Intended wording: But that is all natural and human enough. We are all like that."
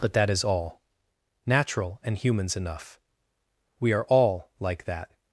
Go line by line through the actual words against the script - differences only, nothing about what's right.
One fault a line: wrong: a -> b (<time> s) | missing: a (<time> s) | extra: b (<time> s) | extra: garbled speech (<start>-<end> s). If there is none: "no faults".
wrong: human -> humans (2.2 s)